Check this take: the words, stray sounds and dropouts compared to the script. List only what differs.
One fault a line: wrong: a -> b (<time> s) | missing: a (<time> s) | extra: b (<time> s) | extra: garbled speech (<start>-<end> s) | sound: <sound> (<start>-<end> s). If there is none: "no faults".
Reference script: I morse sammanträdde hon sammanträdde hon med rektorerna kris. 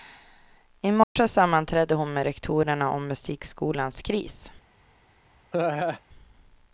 sound: dropout (1.0-1.2 s)
wrong: sammanträdde hon med rektorerna -> med rektorerna om musikskolans (2.1 s)
sound: laugh (5.5-6.0 s)